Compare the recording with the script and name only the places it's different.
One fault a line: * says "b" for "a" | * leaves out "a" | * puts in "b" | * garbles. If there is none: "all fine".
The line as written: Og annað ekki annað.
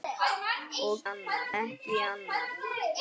all fine